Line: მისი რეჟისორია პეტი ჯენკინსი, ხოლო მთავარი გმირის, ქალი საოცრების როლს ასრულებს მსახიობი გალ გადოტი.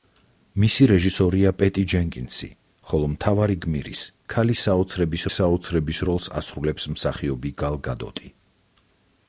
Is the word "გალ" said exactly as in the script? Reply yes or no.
yes